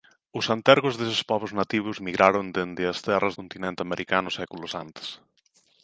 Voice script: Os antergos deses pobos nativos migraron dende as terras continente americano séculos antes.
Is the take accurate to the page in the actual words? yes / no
yes